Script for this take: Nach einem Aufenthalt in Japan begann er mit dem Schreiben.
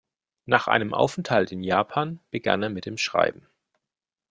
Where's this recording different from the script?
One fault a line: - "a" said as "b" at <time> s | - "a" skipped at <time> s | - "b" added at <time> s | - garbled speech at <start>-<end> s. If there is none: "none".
none